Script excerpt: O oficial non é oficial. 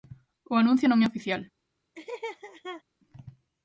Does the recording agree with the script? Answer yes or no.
no